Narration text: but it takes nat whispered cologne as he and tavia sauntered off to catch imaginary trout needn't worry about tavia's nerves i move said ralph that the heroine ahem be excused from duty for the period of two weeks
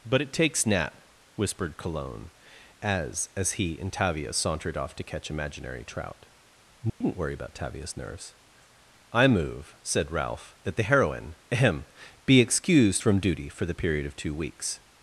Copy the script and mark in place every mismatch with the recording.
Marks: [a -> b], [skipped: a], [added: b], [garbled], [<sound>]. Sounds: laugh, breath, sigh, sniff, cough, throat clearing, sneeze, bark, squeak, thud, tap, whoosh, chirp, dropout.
but it takes nat whispered cologne as [added: as] he and tavia sauntered off to catch imaginary trout needn't [dropout] worry about tavia's nerves i move said ralph that the heroine ahem be excused from duty for the period of two weeks